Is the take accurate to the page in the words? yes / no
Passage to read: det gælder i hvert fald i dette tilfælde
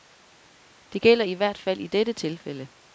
yes